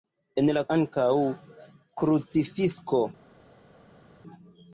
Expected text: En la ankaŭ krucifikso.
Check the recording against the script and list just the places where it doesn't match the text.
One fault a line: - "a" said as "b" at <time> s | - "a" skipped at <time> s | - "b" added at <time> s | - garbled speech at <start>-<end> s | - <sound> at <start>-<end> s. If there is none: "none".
none